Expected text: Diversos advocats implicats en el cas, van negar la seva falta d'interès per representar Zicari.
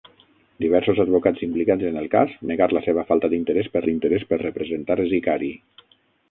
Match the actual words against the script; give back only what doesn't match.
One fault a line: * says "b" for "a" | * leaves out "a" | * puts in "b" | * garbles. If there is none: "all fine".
* leaves out "van"
* puts in "d'interès per"